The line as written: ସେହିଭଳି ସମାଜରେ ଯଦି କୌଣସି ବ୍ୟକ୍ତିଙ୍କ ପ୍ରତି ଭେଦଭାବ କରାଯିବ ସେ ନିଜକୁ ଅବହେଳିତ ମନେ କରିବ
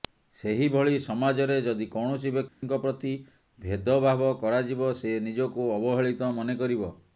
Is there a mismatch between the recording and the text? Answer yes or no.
no